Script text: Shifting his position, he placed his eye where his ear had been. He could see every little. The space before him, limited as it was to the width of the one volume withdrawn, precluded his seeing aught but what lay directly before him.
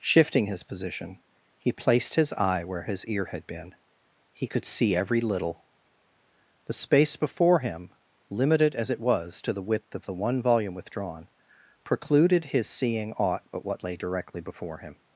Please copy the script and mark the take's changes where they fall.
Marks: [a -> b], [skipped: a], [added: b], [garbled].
Shifting his position, he placed his eye where his ear had been. He could see every little. The space before him, limited as it was to the width of the one volume withdrawn, precluded his seeing aught but what lay directly before him.